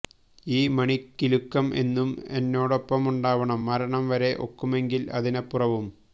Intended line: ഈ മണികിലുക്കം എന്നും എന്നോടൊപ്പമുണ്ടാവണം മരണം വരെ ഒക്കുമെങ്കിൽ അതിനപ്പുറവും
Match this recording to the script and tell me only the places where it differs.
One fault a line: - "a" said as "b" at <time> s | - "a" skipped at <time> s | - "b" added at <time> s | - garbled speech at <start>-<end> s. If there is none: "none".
none